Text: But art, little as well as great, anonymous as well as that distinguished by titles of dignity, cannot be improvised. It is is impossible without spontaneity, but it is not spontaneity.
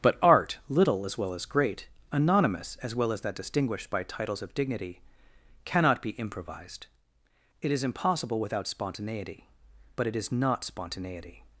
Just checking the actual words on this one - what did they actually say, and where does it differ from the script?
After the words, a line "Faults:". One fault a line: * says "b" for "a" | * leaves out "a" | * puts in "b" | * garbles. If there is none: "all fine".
But art, little as well as great, anonymous as well as that distinguished by titles of dignity, cannot be improvised. It is impossible without spontaneity, but it is not spontaneity.
Faults:
* leaves out "is"